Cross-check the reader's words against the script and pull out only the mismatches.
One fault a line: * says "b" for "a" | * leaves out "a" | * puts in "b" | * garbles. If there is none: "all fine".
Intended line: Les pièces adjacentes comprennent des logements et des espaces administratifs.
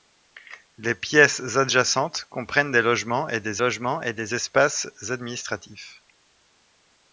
* puts in "logements et des"